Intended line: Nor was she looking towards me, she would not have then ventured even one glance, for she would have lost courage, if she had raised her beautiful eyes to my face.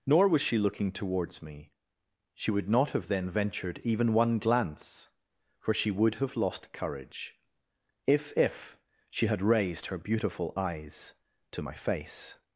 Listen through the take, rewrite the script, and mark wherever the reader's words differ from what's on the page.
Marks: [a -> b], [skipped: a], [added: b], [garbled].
Nor was she looking towards me, she would not have then ventured even one glance, for she would have lost courage, if [added: if] she had raised her beautiful eyes to my face.